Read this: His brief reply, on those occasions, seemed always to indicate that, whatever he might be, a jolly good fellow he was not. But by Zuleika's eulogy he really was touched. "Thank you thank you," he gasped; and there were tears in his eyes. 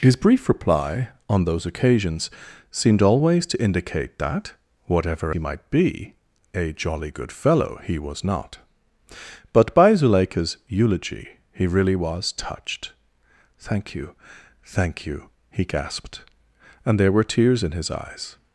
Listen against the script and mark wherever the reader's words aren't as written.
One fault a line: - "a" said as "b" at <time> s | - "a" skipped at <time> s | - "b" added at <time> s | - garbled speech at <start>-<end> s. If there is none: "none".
none